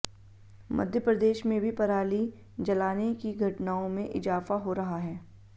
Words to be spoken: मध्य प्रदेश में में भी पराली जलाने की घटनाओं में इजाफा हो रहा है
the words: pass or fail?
fail